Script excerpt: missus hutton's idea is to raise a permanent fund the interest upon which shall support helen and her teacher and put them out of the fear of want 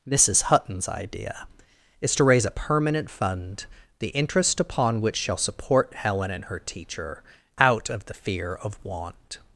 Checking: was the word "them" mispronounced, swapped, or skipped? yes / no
yes